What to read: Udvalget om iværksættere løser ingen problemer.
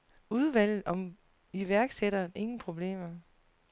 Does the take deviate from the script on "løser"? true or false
true